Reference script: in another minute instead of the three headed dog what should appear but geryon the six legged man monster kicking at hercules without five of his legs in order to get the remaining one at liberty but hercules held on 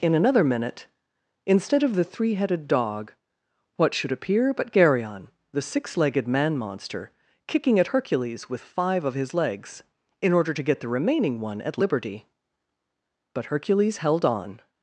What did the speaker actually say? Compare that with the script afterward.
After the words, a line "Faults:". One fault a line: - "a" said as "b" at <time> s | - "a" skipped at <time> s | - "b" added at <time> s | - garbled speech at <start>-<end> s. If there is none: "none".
in another minute instead of the three headed dog what should appear but geryon the six legged man monster kicking at hercules with five of his legs in order to get the remaining one at liberty but hercules held on
Faults:
- "without" said as "with" at 8.5 s